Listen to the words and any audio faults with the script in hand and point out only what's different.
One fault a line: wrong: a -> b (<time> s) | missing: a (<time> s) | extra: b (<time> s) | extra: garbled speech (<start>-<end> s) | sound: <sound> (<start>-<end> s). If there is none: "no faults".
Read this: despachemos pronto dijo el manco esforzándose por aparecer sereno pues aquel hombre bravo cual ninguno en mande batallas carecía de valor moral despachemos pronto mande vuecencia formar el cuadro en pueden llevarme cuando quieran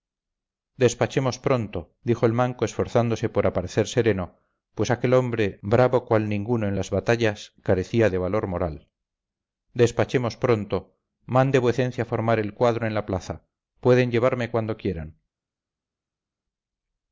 wrong: mande -> las (6.7 s)
extra: la plaza (12.9 s)